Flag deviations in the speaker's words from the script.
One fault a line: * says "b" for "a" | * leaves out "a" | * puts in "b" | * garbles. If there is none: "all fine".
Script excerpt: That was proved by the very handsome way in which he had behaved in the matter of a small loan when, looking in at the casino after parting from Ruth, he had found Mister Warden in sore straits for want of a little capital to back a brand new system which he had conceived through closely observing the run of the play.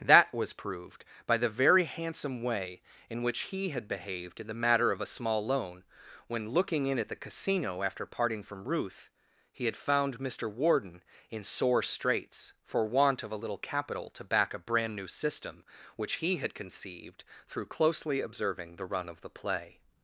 all fine